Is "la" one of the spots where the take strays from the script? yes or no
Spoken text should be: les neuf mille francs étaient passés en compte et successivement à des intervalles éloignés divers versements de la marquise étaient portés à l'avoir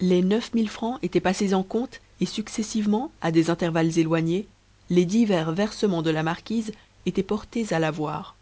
no